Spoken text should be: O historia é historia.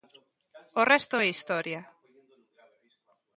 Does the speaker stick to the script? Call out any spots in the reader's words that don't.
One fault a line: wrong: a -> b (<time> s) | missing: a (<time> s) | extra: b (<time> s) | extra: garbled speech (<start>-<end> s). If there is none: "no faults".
wrong: historia -> resto (0.9 s)